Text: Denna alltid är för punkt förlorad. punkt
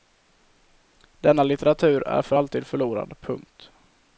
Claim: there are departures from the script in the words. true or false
true